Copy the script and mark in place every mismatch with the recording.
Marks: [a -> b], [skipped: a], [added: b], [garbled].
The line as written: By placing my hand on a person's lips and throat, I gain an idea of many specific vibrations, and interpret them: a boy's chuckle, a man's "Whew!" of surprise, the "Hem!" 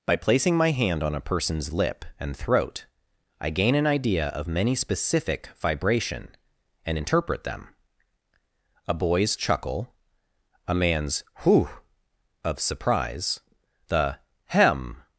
By placing my hand on a person's [lips -> lip] and throat, I gain an idea of many specific [vibrations, -> vibration] and interpret them: a boy's chuckle, a man's "Whew!" of surprise, the "Hem!"